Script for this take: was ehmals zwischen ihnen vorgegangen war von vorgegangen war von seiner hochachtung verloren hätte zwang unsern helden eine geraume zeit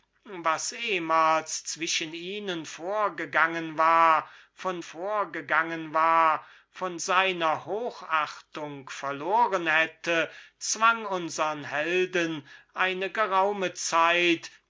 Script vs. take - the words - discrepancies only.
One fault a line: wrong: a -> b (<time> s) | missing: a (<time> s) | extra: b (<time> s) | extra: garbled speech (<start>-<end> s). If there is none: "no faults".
no faults